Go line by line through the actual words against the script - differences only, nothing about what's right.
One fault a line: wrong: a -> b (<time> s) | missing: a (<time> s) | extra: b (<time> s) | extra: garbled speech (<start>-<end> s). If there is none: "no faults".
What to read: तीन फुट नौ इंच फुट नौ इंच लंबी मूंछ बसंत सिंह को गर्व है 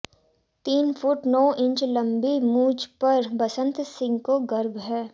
missing: फुट नौ इंच (1.8 s)
extra: पर (3.0 s)